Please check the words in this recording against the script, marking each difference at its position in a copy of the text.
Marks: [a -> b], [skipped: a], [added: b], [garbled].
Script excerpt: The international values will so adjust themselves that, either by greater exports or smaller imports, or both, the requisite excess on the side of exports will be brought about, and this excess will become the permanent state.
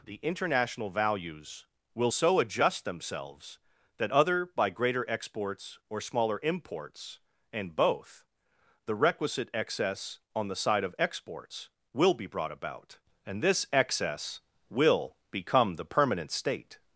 The international values will so adjust themselves that, [either -> other] by greater exports or smaller imports, [or -> and] both, the requisite excess on the side of exports will be brought about, and this excess will become the permanent state.